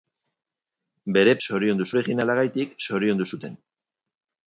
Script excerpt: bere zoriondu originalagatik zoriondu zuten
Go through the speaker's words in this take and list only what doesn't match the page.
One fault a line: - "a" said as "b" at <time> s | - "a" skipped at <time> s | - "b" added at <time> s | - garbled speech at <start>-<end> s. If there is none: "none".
none